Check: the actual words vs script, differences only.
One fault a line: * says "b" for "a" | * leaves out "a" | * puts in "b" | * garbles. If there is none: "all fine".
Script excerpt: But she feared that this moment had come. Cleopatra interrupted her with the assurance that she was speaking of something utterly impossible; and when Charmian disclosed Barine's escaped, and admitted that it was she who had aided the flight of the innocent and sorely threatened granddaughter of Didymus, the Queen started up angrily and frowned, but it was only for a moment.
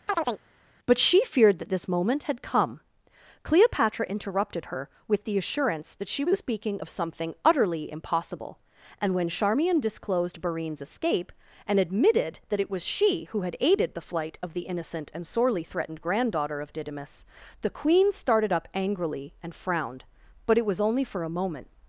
* says "escape" for "escaped"